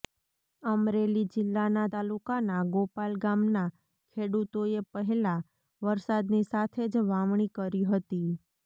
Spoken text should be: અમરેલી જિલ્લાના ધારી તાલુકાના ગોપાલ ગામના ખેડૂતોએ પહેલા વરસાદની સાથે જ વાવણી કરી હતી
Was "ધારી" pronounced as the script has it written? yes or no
no